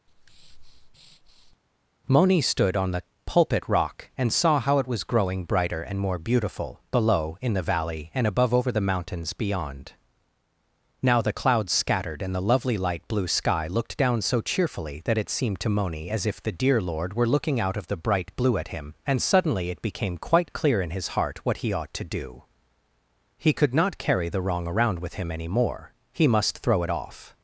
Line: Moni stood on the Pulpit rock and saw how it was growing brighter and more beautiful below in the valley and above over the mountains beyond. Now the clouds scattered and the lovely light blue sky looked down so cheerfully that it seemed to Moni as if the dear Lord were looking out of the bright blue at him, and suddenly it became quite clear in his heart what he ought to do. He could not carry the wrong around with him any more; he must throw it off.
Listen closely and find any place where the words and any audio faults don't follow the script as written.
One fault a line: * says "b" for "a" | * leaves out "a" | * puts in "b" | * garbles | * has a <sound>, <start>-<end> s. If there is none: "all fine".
* has a breath, 0.1-1.6 s